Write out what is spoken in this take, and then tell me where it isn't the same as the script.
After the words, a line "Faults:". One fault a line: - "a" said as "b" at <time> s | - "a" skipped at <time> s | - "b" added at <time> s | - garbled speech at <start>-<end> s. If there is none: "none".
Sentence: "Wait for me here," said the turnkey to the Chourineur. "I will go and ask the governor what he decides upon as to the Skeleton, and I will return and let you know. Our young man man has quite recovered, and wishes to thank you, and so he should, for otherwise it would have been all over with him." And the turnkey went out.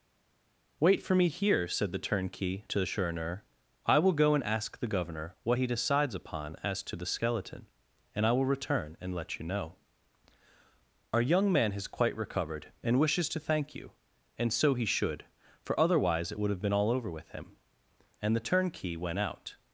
"Wait for me here," said the turnkey to the Chourineur. "I will go and ask the governor what he decides upon as to the Skeleton, and I will return and let you know. Our young man has quite recovered, and wishes to thank you, and so he should, for otherwise it would have been all over with him." And the turnkey went out.
Faults:
- "man" skipped at 11.7 s